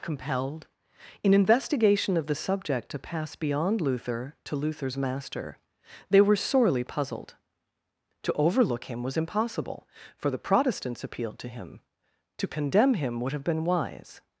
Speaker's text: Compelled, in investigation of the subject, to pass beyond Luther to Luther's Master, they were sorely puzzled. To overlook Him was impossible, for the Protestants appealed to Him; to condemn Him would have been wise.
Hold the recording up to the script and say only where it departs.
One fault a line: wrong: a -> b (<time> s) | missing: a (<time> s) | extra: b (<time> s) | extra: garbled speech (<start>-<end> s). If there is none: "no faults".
no faults